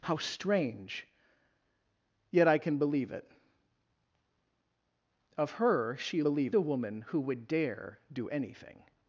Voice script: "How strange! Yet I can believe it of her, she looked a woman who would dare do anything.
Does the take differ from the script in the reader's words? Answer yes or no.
yes